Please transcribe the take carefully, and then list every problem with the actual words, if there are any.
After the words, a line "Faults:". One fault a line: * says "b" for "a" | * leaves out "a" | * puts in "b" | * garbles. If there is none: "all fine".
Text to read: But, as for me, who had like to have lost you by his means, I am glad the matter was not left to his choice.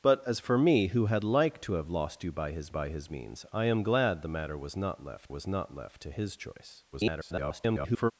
But, as for me, who had like to have lost you by his by his means, I am glad the matter was not left was not left to his choice. [garbled]
Faults:
* puts in "by his"
* puts in "was not left"
* garbles